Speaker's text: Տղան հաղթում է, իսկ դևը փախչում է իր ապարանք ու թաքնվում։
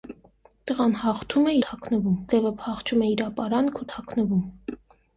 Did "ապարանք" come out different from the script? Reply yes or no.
no